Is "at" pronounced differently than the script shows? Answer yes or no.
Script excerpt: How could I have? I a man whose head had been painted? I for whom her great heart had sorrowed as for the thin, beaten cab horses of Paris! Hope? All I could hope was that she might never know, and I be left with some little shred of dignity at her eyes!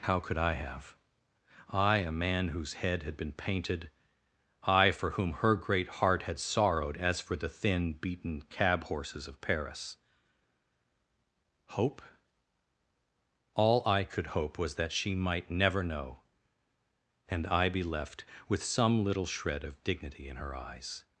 yes